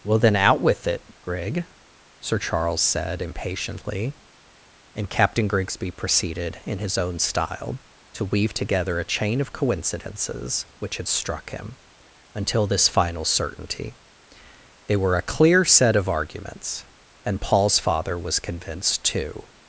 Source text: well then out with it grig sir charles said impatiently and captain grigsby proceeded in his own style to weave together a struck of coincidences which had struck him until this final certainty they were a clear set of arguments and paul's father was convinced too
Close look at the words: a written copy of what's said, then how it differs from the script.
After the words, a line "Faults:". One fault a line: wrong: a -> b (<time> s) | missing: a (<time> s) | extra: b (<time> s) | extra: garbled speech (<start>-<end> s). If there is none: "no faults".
well then out with it grig sir charles said impatiently and captain grigsby proceeded in his own style to weave together a chain of coincidences which had struck him until this final certainty they were a clear set of arguments and paul's father was convinced too
Faults:
wrong: struck -> chain (9.1 s)